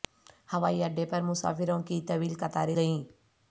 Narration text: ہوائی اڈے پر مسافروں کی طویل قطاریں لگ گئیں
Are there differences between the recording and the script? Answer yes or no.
yes